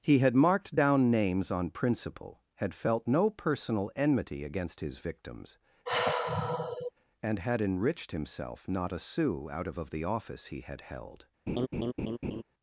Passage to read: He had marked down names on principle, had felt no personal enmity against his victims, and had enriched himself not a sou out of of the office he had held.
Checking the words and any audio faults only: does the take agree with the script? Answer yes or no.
no